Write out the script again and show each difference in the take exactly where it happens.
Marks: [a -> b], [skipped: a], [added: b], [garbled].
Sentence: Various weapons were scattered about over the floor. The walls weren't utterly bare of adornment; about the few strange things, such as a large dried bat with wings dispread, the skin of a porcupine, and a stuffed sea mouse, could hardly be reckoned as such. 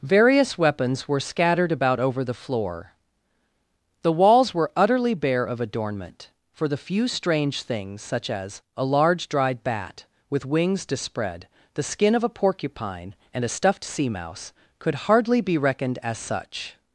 Various weapons were scattered about over the floor. The walls [weren't -> were] utterly bare of adornment; [about -> for] the few strange things, such as a large dried bat with wings dispread, the skin of a porcupine, and a stuffed sea mouse, could hardly be reckoned as such.